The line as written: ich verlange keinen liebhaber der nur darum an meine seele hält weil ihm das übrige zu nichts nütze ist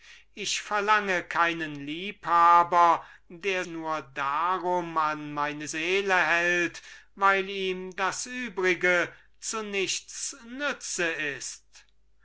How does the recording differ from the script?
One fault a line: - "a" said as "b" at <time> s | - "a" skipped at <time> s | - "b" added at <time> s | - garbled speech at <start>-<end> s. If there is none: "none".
none